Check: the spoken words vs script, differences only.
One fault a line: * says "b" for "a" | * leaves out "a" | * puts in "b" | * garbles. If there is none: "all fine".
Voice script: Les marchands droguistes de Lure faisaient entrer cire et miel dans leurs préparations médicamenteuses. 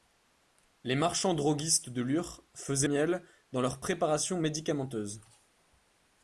* leaves out "entrer cire et"